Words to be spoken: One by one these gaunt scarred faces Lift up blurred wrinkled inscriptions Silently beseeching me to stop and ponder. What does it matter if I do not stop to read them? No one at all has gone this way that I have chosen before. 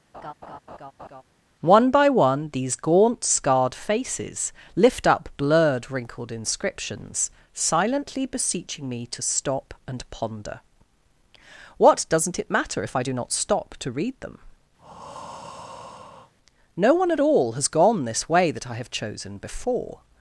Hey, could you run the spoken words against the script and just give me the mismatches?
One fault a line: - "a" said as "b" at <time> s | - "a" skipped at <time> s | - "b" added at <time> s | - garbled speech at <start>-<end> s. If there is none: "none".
- "does" said as "doesn't" at 12.1 s